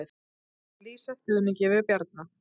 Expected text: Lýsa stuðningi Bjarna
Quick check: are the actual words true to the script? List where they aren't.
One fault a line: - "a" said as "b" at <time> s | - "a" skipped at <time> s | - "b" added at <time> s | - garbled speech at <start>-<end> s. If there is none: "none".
- "við" added at 1.8 s